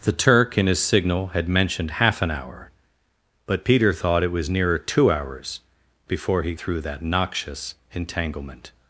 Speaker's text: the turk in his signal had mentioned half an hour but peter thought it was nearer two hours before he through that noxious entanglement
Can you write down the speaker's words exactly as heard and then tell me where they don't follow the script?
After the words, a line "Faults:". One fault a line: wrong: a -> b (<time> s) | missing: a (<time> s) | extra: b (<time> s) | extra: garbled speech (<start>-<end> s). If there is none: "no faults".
the turk in his signal had mentioned half an hour but peter thought it was nearer two hours before he through that noxious entanglement
Faults:
no faults